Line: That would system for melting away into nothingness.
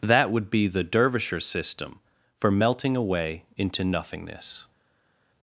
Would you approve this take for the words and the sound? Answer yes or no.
no